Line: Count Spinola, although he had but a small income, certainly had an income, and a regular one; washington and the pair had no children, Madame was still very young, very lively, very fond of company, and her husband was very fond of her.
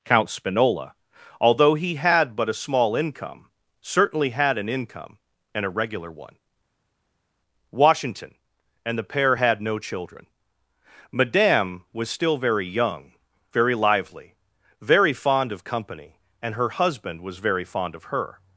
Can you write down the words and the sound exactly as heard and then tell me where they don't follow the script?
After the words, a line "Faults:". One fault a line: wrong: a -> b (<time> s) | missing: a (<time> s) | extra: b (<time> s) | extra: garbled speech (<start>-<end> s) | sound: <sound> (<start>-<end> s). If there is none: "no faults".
Count Spinola, although he had but a small income, certainly had an income, and a regular one; washington and the pair had no children, Madame was still very young, very lively, very fond of company, and her husband was very fond of her.
Faults:
no faults